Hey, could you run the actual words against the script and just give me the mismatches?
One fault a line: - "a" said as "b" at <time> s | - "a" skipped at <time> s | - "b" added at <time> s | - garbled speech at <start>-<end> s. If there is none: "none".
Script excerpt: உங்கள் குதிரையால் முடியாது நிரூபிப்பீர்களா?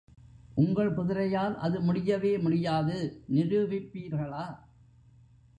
- "அது முடியவே" added at 1.6 s